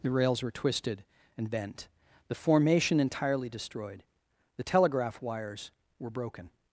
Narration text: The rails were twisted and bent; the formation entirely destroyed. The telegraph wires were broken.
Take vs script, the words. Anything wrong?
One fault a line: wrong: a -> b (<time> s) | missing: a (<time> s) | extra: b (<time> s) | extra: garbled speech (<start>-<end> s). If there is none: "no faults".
no faults